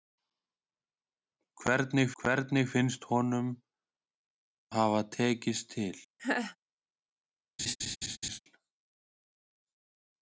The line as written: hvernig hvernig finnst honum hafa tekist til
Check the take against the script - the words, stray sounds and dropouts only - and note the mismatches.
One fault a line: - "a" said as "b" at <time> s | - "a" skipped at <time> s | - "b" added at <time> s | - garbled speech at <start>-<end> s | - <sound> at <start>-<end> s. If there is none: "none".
- laugh at 6.2-6.6 s
- laugh at 7.6-8.4 s